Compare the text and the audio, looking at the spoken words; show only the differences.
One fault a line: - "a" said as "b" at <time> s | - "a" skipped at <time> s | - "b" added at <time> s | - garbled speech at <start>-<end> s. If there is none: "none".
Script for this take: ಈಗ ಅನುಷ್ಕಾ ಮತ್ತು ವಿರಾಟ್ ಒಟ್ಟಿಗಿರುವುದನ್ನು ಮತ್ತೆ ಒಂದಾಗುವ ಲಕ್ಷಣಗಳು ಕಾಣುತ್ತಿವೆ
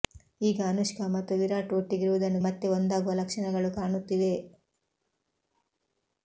none